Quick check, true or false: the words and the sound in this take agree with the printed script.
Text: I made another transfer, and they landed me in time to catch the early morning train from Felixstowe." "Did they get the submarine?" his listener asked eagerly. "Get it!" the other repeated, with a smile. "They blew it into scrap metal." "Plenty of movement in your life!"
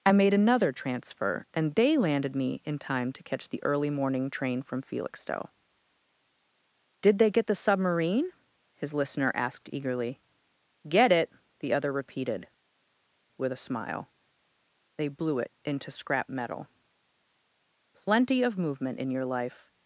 true